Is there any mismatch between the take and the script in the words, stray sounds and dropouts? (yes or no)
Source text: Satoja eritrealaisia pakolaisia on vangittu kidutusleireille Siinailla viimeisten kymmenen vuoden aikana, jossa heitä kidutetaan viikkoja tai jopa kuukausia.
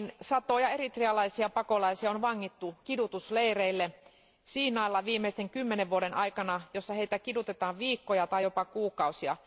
no